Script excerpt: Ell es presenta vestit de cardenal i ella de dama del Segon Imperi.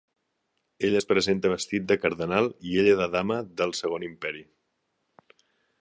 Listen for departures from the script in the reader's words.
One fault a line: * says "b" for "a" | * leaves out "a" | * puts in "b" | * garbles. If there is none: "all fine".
all fine